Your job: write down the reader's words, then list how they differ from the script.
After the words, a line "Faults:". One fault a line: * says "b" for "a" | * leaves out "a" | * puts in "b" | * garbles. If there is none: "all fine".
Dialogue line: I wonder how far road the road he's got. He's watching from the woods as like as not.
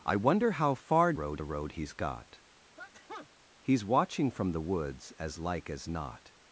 I wonder how far road the road he's got. He's watching from the woods as like as not.
Faults:
all fine